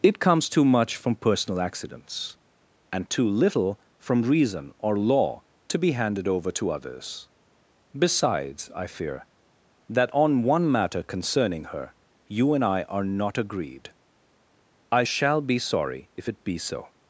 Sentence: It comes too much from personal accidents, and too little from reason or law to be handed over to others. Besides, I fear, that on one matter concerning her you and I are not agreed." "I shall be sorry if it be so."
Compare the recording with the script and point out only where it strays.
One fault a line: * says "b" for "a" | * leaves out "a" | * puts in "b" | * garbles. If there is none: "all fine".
all fine